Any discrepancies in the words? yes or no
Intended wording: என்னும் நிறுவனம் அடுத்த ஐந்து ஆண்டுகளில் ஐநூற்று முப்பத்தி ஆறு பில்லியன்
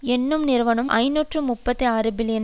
yes